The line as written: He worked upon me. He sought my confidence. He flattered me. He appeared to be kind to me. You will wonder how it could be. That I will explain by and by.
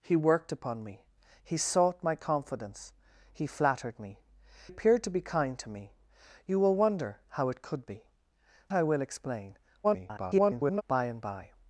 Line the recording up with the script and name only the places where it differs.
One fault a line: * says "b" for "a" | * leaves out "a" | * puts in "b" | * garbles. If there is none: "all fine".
* leaves out "He"
* leaves out "That"
* garbles